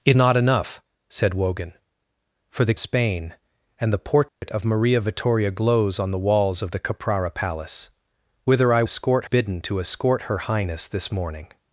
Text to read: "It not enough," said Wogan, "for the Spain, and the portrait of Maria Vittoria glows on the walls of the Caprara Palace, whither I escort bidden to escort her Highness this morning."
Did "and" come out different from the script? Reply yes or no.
no